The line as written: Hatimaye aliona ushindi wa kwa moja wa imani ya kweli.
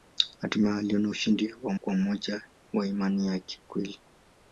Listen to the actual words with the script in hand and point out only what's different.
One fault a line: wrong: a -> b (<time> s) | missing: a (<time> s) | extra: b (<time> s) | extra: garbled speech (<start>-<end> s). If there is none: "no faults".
no faults